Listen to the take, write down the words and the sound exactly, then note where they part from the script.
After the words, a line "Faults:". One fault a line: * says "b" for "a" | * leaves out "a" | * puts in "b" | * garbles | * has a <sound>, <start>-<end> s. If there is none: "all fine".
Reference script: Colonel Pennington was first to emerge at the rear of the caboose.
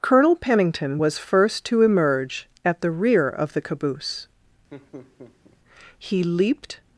Colonel Pennington was first to emerge at the rear of the caboose. He leaped
Faults:
* has a laugh, 4.7-5.6 s
* puts in "He leaped"